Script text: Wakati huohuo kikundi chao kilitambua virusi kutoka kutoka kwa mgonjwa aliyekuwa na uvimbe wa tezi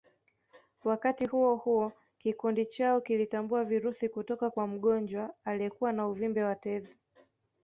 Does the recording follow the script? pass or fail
fail